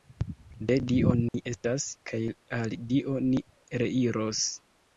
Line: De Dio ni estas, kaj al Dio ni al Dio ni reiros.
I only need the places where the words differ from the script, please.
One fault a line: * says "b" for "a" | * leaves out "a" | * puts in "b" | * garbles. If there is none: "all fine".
* leaves out "al Dio ni"